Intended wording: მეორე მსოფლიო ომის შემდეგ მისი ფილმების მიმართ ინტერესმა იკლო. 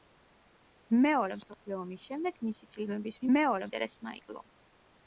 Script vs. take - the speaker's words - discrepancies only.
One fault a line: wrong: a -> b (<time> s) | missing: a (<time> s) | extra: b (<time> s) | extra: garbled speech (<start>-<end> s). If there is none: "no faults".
wrong: მიმართ -> მეორე (3.3 s)